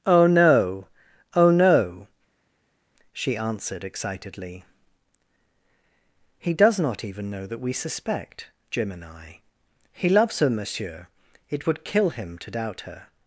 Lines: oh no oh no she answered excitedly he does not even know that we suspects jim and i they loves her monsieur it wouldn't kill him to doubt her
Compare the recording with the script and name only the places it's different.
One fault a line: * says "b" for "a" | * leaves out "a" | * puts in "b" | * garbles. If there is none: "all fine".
* says "suspect" for "suspects"
* says "he" for "they"
* says "would" for "wouldn't"